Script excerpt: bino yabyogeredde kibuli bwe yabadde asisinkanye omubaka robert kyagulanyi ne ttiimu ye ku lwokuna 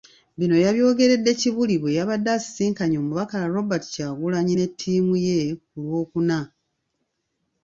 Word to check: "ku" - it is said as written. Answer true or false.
true